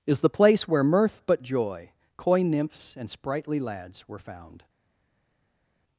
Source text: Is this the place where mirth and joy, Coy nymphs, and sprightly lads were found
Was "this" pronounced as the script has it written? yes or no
no